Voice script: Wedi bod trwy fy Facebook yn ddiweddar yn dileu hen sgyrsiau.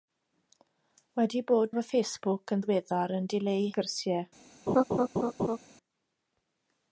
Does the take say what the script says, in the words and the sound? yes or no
no